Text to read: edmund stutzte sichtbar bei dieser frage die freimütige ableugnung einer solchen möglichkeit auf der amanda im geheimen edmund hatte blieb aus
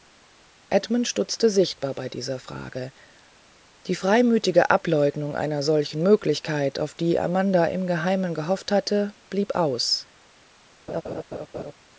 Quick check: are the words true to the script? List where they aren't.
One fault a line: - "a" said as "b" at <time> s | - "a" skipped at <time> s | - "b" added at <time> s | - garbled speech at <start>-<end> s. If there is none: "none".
- "der" said as "die" at 7.0 s
- "edmund" said as "gehofft" at 8.3 s